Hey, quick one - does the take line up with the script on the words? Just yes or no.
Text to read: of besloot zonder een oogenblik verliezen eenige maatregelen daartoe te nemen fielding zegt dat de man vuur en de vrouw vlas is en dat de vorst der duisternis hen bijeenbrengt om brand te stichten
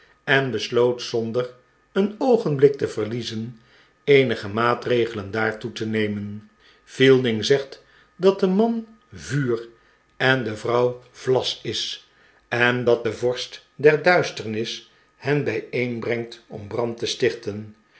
no